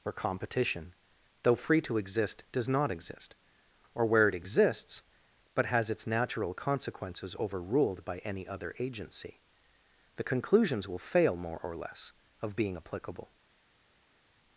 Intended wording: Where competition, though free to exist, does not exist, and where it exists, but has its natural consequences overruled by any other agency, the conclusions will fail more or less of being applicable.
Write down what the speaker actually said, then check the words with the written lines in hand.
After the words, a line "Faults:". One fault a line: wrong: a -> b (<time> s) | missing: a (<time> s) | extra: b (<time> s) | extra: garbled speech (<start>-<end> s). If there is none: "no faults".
Where competition, though free to exist, does not exist, or where it exists, but has its natural consequences overruled by any other agency, the conclusions will fail more or less of being applicable.
Faults:
wrong: and -> or (3.9 s)